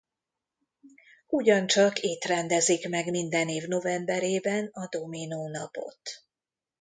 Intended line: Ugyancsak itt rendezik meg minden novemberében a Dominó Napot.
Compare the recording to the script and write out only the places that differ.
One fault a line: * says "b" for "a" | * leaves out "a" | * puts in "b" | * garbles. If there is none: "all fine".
* puts in "év"